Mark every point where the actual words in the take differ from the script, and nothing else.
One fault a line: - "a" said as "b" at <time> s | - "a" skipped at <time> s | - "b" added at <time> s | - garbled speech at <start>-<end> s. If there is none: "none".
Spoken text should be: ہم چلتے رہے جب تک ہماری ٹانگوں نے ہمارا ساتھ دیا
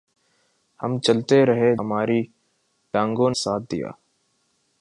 - "جب تک" skipped at 1.8 s
- "نے ہمارا" skipped at 3.3 s